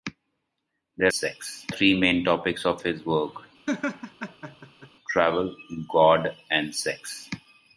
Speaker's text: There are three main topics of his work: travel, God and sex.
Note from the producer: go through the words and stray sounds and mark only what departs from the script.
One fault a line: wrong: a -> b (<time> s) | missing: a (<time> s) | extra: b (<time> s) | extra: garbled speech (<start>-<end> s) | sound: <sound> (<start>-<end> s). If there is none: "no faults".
wrong: are -> sex (1.1 s)
sound: laugh (3.7-4.9 s)